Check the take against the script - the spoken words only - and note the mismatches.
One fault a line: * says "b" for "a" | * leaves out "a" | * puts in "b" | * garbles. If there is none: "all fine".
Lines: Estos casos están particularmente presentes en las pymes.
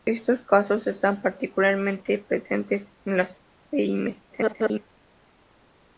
* garbles